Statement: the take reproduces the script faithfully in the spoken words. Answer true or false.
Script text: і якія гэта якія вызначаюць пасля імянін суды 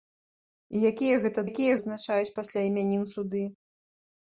true